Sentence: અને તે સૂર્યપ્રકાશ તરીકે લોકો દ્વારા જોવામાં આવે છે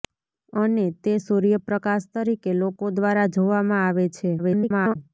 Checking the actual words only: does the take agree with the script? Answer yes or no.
no